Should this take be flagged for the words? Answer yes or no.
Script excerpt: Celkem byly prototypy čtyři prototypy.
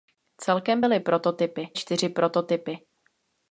no